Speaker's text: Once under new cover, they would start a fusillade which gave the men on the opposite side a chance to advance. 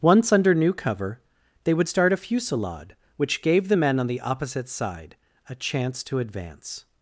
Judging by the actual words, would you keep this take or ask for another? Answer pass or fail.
pass